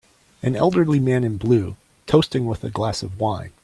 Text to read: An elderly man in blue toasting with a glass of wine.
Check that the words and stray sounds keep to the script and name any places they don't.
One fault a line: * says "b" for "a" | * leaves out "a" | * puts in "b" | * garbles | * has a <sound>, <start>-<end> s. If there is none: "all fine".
all fine